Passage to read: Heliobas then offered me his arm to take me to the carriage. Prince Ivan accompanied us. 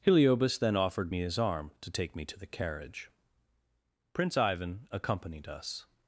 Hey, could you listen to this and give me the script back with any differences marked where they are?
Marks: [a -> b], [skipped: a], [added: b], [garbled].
Heliobas then offered me his arm to take me to the carriage. Prince Ivan accompanied us.